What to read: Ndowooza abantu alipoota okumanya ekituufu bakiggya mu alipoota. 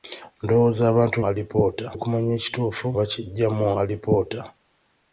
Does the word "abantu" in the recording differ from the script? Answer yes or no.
no